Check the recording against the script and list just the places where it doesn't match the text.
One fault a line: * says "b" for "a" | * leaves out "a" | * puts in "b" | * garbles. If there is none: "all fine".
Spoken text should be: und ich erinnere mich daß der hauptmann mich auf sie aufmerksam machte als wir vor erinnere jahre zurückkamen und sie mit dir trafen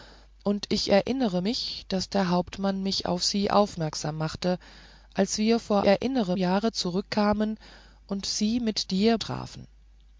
all fine